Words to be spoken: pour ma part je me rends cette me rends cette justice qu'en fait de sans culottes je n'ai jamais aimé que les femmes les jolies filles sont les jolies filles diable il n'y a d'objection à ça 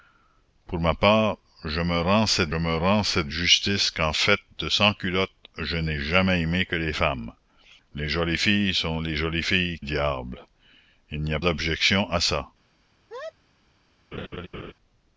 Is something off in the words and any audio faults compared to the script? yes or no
yes